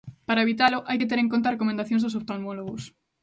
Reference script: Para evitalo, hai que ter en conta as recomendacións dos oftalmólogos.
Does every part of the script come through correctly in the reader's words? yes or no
yes